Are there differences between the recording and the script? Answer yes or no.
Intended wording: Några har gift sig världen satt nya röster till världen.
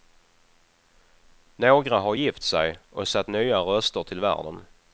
yes